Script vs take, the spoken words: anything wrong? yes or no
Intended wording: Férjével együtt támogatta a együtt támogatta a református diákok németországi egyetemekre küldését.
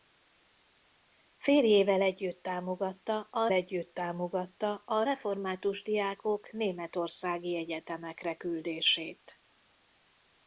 no